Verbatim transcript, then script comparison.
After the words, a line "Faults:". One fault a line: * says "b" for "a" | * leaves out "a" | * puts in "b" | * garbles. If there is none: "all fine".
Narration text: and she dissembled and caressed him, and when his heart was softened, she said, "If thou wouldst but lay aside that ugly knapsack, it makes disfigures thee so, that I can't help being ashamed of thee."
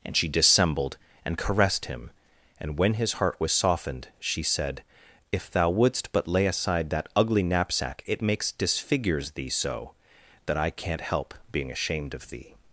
and she dissembled and caressed him, and when his heart was softened, she said, "If thou wouldst but lay aside that ugly knapsack, it makes disfigures thee so, that I can't help being ashamed of thee."
Faults:
all fine